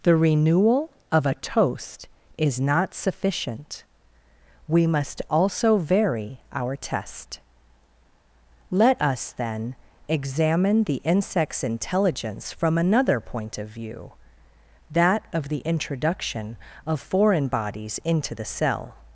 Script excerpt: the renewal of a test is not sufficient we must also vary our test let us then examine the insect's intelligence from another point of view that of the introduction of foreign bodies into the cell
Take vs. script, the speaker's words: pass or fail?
fail